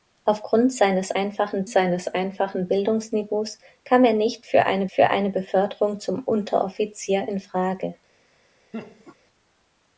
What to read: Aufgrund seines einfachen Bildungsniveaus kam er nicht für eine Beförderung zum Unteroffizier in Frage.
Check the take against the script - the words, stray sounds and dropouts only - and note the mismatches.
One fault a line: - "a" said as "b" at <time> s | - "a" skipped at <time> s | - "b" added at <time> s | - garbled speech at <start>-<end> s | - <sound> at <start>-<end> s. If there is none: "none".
- "seines einfachen" added at 1.7 s
- "für eine" added at 4.9 s
- laugh at 8.7-9.2 s